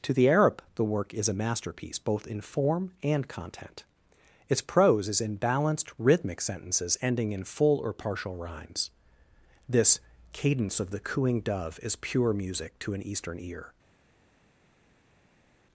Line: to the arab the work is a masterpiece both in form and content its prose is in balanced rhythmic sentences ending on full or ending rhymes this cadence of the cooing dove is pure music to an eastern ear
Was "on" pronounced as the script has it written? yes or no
no